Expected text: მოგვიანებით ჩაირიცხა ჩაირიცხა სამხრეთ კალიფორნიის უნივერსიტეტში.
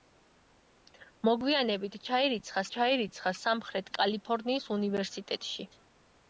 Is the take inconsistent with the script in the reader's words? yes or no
no